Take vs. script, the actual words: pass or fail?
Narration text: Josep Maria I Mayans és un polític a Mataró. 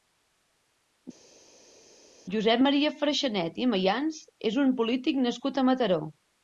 fail